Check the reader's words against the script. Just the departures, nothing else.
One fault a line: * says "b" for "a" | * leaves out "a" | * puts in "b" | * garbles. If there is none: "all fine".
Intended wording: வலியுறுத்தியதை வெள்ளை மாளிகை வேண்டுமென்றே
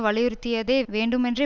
* leaves out "வெள்ளை மாளிகை"